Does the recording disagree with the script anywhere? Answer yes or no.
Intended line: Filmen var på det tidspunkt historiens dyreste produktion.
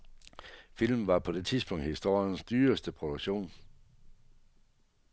no